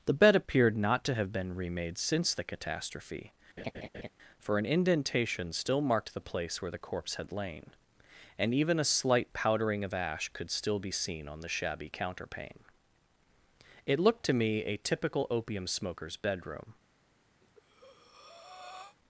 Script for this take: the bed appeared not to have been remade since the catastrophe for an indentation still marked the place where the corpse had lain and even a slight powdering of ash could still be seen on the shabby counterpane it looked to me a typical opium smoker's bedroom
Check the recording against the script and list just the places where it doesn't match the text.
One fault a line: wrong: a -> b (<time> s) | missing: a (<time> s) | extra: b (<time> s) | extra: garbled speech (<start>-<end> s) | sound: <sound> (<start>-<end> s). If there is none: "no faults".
sound: laugh (3.6-4.1 s)
sound: breath (17.4-19.0 s)